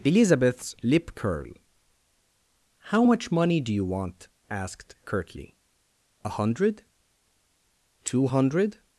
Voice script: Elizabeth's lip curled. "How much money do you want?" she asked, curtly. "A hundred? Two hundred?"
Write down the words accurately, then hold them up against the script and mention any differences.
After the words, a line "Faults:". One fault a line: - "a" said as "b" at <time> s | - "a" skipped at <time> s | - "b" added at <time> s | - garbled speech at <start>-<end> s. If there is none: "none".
Elizabeth's lip curl. "How much money do you want?" asked, curtly. "A hundred? Two hundred?"
Faults:
- "curled" said as "curl" at 1.1 s
- "she" skipped at 4.3 s